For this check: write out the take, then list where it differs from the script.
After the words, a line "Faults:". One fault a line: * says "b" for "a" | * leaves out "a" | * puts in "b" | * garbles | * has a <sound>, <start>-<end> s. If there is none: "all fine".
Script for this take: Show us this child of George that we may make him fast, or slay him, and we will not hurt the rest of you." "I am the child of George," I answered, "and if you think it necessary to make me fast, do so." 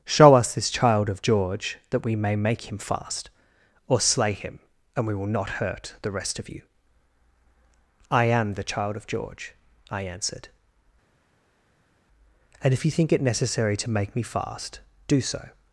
Show us this child of George that we may make him fast, or slay him, and we will not hurt the rest of you." "I am the child of George," I answered, "and if you think it necessary to make me fast, do so."
Faults:
all fine